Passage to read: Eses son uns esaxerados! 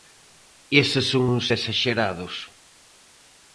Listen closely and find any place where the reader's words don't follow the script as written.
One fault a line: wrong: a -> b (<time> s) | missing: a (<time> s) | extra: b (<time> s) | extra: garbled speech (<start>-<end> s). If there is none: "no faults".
no faults